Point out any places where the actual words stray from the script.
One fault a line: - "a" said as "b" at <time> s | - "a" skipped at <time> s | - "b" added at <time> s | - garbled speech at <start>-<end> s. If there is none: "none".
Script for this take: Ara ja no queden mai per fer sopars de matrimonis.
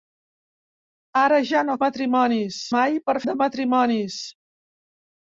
- "queden" said as "matrimonis" at 1.8 s
- "fer sopars" skipped at 3.2 s